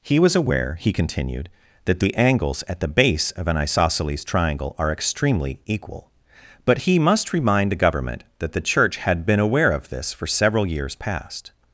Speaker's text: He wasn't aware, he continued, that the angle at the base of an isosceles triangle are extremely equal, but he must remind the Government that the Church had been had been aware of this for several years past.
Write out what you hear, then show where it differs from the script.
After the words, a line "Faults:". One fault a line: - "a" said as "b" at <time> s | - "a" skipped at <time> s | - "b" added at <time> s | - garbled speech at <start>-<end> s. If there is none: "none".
He was aware, he continued, that the angles at the base of an isosceles triangle are extremely equal, but he must remind the Government that the Church had been aware of this for several years past.
Faults:
- "wasn't" said as "was" at 0.2 s
- "angle" said as "angles" at 2.1 s
- "had been" skipped at 9.4 s